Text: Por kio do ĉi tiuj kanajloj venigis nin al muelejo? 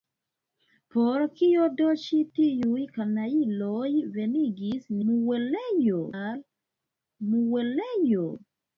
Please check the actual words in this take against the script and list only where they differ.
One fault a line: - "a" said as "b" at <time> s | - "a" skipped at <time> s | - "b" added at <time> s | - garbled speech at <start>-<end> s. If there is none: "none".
- "nin" said as "muelejo" at 5.1 s